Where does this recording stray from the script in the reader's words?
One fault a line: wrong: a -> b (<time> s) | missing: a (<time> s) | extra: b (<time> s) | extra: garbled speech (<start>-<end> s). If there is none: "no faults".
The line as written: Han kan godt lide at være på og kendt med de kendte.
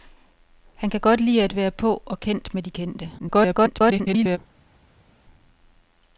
extra: garbled speech (3.2-4.4 s)